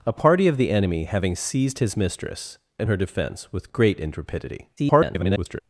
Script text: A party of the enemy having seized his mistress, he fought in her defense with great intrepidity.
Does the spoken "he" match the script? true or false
false